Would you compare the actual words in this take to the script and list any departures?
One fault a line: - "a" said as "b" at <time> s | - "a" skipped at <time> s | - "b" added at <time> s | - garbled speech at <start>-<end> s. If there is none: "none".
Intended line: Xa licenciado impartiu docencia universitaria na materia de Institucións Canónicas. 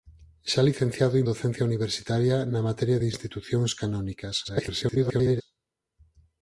- "impartiu" skipped at 1.2 s
- garbled speech at 4.4-5.4 s